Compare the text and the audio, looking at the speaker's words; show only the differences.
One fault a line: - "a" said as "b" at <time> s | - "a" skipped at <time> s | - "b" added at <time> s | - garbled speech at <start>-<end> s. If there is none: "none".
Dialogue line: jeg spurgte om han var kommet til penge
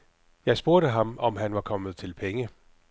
- "ham" added at 0.9 s